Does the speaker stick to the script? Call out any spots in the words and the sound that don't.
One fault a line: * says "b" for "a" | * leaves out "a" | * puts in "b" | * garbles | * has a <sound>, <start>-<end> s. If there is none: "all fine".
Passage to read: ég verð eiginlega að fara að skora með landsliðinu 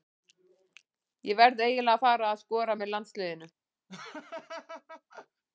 * has a laugh, 3.9-5.4 s